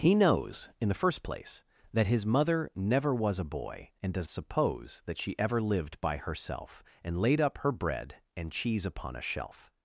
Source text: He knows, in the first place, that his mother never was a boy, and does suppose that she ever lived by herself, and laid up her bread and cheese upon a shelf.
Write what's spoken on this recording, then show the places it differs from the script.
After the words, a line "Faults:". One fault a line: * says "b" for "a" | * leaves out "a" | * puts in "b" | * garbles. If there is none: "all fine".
He knows, in the first place, that his mother never was a boy, and does suppose that she ever lived by herself, and laid up her bread and cheese upon a shelf.
Faults:
all fine